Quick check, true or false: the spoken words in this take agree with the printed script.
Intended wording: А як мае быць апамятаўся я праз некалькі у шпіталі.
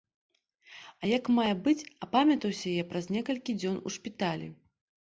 false